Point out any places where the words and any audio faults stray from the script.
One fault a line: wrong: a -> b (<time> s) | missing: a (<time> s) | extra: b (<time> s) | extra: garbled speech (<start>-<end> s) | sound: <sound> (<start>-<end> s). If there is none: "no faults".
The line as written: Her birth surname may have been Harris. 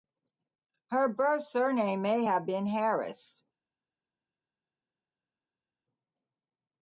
no faults